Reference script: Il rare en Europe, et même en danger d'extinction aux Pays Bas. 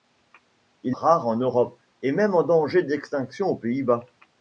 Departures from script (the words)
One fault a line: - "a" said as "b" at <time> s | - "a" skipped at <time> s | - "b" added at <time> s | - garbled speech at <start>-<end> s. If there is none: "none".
none